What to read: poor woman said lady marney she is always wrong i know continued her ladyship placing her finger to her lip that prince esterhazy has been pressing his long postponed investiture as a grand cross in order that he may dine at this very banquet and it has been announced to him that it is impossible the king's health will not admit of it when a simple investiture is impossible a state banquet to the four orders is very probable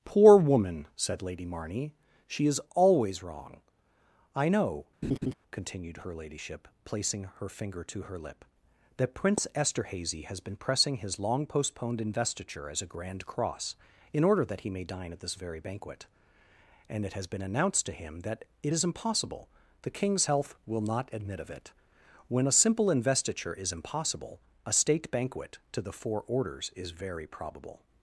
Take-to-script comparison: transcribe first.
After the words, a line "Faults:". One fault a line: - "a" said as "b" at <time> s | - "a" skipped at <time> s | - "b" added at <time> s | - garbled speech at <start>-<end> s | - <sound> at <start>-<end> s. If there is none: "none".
poor woman said lady marney she is always wrong i know continued her ladyship placing her finger to her lip that prince esterhazy has been pressing his long postponed investiture as a grand cross in order that he may dine at this very banquet and it has been announced to him that it is impossible the king's health will not admit of it when a simple investiture is impossible a state banquet to the four orders is very probable
Faults:
- laugh at 5.0-5.3 s